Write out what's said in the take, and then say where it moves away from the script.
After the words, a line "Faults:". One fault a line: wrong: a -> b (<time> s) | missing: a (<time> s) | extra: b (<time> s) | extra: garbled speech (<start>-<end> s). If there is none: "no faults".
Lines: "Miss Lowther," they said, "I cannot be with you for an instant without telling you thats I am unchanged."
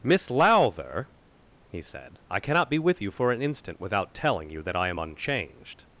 "Miss Lowther," he said, "I cannot be with you for an instant without telling you that I am unchanged."
Faults:
wrong: they -> he (1.6 s)
wrong: thats -> that (4.6 s)